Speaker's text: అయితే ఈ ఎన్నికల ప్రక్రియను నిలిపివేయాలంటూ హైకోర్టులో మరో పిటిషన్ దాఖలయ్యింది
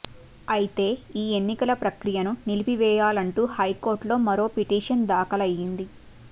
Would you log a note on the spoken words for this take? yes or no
no